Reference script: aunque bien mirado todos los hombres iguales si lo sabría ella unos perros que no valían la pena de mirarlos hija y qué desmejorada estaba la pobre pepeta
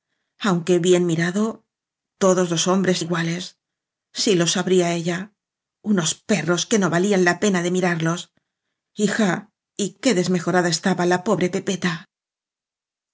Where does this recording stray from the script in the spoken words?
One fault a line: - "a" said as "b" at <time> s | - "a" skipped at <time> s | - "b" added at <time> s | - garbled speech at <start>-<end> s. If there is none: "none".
none